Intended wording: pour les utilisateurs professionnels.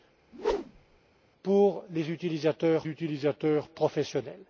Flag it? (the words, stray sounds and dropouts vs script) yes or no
yes